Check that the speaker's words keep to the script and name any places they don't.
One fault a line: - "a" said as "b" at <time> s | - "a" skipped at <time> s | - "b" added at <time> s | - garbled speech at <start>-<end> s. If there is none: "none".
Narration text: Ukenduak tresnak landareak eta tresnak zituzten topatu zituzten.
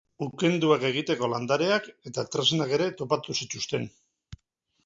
- "tresnak" said as "egiteko" at 0.9 s
- "zituzten" said as "ere" at 2.8 s